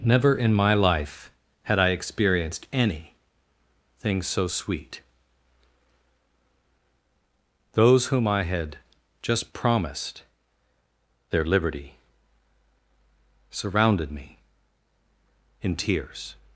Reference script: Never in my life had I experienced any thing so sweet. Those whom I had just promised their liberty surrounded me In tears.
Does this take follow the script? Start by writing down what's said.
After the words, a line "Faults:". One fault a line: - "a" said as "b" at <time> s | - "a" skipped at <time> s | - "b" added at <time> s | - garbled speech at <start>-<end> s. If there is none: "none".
Never in my life had I experienced any thing so sweet. Those whom I had just promised their liberty surrounded me In tears.
Faults:
none